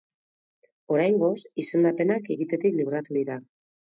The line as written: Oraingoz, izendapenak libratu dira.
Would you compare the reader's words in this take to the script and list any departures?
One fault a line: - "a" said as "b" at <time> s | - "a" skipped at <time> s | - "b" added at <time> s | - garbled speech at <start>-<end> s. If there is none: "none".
- "egitetik" added at 2.3 s